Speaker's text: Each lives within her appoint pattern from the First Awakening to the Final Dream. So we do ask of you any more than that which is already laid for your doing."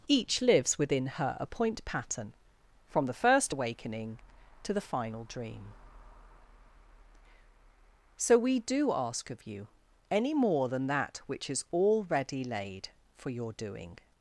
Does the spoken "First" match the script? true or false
true